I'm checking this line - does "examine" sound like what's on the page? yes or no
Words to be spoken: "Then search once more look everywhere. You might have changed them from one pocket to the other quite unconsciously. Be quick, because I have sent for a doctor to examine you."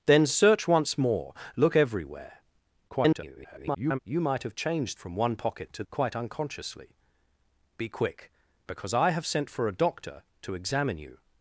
yes